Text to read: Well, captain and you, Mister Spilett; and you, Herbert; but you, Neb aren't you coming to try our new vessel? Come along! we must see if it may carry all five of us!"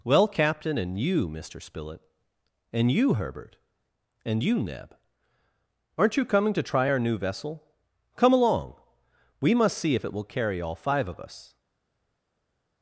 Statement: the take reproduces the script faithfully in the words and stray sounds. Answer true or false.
false